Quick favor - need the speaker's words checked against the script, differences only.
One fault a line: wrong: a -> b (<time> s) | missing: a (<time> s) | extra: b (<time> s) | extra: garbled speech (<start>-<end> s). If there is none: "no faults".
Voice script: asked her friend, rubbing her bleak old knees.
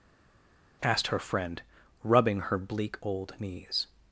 no faults